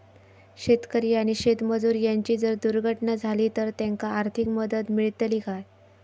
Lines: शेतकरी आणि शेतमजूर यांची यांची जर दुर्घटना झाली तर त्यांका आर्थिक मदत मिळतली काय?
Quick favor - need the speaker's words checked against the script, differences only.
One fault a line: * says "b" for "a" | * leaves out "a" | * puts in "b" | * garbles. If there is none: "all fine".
* leaves out "यांची"